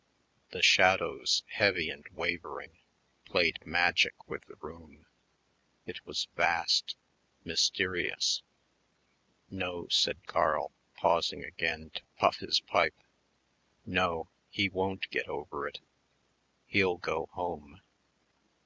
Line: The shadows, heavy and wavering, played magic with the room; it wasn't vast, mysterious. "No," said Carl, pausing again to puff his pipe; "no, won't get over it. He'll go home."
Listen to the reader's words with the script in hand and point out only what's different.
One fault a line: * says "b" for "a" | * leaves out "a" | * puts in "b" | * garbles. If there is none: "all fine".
* says "was" for "wasn't"
* puts in "he"